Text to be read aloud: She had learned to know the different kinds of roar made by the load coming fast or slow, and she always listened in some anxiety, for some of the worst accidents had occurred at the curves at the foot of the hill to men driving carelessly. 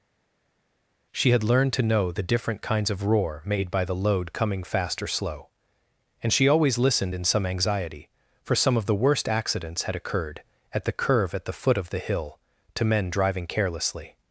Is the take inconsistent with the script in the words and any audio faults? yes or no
yes